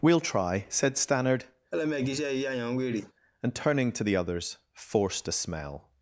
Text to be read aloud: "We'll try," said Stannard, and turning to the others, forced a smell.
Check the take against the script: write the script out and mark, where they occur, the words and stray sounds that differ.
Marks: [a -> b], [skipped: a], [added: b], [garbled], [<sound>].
"We'll try," said Stannard, [laugh] and turning to the others, forced a smell.